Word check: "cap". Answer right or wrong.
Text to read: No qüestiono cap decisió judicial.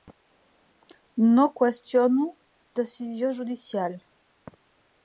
wrong